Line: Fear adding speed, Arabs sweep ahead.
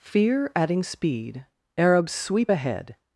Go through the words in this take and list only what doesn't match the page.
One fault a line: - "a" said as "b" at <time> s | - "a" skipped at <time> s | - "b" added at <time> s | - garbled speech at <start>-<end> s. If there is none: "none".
none